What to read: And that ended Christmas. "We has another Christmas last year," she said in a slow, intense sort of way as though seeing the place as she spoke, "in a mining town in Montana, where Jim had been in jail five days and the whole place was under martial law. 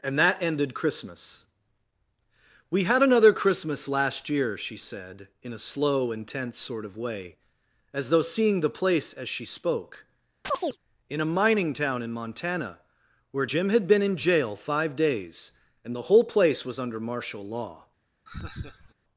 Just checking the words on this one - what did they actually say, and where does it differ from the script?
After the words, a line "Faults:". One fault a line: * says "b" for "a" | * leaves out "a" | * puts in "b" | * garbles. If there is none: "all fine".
And that ended Christmas. "We had another Christmas last year," she said in a slow, intense sort of way as though seeing the place as she spoke, "in a mining town in Montana, where Jim had been in jail five days and the whole place was under martial law.
Faults:
* says "had" for "has"